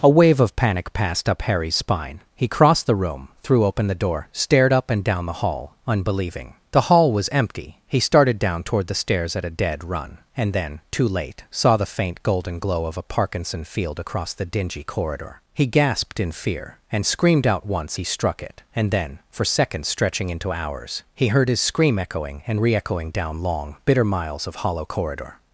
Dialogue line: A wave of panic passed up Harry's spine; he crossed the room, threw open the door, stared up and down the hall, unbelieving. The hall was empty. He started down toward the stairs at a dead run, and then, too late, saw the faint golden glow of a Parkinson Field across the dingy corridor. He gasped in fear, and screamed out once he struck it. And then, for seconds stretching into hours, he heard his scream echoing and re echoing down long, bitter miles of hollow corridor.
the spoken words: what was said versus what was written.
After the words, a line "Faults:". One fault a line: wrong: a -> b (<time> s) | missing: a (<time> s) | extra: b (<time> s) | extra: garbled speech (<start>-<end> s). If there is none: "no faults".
A wave of panic passed up Harry's spine; he crossed the room, threw open the door, stared up and down the hall, unbelieving. The hall was empty. He started down toward the stairs at a dead run, and then, too late, saw the faint golden glow of a Parkinson Field across the dingy corridor. He gasped in fear, and screamed out once he struck it. And then, for seconds stretching into hours, he heard his scream echoing and re echoing down long, bitter miles of hollow corridor.
Faults:
no faults